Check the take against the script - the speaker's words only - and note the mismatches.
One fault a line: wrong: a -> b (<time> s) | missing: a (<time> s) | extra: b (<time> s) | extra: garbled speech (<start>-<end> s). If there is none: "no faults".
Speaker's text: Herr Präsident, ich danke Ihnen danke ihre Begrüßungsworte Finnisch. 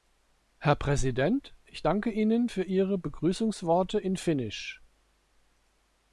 wrong: danke -> für (2.4 s)
extra: in (4.0 s)